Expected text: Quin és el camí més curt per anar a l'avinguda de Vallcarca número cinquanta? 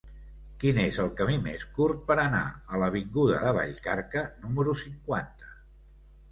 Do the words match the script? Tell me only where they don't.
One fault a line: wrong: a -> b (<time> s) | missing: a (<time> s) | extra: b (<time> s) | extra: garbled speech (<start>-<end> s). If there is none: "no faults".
no faults